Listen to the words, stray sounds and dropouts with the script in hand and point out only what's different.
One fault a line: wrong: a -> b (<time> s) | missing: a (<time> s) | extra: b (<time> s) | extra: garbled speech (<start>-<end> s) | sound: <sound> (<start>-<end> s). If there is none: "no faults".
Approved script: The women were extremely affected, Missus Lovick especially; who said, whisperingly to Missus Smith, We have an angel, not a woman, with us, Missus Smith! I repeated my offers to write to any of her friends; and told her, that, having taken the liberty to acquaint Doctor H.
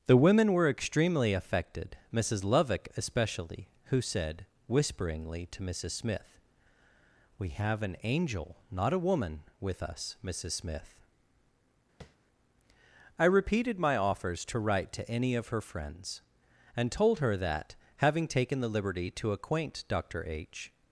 sound: tap (12.0-12.2 s)